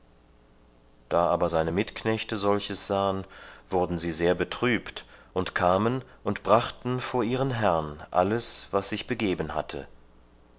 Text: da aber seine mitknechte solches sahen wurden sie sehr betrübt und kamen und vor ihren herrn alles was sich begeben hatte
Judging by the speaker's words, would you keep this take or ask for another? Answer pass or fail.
fail